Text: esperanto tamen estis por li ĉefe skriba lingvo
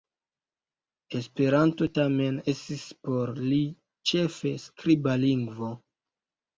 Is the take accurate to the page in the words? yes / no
yes